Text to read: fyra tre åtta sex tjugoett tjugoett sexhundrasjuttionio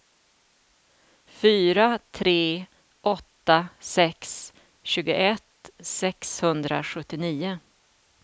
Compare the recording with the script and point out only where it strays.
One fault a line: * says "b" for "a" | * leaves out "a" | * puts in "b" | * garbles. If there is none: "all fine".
* leaves out "tjugoett"